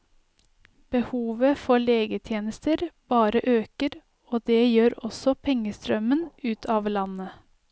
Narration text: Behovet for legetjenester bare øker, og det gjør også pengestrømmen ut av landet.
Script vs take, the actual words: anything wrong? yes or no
no